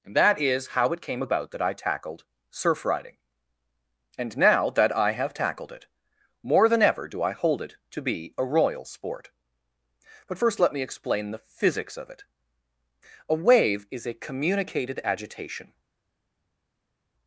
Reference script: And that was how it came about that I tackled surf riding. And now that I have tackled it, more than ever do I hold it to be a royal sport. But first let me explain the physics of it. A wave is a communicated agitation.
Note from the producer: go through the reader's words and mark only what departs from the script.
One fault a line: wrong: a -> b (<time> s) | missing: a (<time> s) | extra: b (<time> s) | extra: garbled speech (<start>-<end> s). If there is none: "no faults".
wrong: was -> is (0.4 s)